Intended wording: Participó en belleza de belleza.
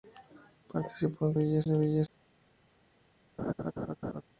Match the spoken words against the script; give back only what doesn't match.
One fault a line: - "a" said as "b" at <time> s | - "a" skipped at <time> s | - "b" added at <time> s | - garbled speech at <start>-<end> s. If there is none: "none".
none